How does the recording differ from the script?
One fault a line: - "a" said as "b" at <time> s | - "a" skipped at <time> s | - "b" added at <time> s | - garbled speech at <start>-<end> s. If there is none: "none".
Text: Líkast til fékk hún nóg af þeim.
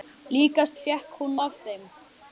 - "til" skipped at 0.8 s
- "nóg" skipped at 1.3 s